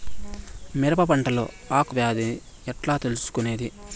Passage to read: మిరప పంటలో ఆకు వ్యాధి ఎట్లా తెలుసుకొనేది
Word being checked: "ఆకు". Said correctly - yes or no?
yes